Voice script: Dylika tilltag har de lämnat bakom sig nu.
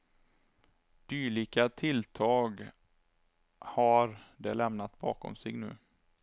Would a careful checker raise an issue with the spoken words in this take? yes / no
no